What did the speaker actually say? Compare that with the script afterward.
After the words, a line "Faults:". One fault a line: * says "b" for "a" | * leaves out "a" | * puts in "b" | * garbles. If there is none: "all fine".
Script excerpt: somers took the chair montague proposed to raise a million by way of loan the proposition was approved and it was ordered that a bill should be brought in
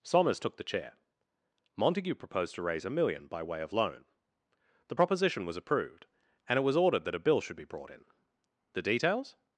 somers took the chair montague proposed to raise a million by way of loan the proposition was approved and it was ordered that a bill should be brought in the details
Faults:
* puts in "the details"